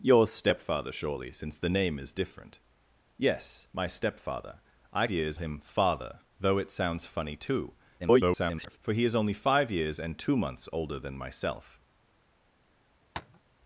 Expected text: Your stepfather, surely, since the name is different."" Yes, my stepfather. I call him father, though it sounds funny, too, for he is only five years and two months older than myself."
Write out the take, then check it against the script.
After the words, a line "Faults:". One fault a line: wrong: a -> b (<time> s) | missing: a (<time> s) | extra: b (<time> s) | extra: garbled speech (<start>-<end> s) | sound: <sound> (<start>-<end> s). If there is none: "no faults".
Your stepfather, surely, since the name is different."" Yes, my stepfather. I years him father, though it sounds funny, too, [garbled] for he is only five years and two months older than myself."
Faults:
wrong: call -> years (5.1 s)
extra: garbled speech (8.0-8.8 s)
sound: tap (13.1-13.4 s)